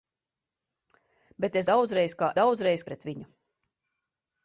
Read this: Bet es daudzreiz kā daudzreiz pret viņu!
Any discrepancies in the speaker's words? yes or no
no